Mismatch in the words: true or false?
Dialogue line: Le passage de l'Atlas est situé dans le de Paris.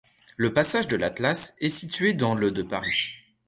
false